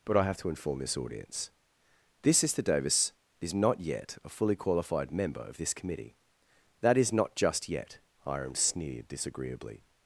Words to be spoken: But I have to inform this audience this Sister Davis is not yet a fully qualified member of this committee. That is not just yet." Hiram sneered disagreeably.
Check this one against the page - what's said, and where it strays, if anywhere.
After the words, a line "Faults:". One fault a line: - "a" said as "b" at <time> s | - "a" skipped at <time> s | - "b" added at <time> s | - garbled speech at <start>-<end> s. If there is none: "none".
But I have to inform this audience this Sister Davis is not yet a fully qualified member of this committee. That is not just yet." Hiram sneered disagreeably.
Faults:
none